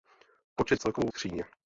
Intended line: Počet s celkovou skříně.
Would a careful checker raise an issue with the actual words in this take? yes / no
no